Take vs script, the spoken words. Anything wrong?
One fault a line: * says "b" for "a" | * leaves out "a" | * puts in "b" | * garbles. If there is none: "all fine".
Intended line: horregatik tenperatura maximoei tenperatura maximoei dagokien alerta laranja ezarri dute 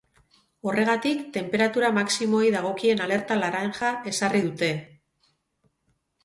* leaves out "tenperatura maximoei"